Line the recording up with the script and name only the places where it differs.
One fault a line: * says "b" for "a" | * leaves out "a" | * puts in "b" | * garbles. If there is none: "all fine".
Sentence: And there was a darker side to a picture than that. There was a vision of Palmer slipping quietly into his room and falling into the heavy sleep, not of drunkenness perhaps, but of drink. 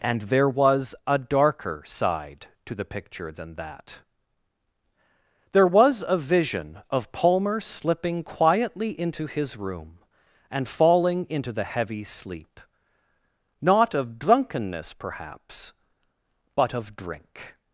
* says "the" for "a"